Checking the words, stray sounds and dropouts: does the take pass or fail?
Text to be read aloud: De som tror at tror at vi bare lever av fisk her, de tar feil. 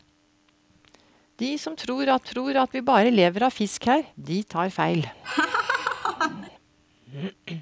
fail